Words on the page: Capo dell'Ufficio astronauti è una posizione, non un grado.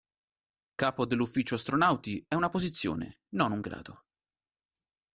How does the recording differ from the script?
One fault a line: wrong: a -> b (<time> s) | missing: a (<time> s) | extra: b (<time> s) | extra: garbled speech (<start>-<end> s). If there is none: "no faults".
no faults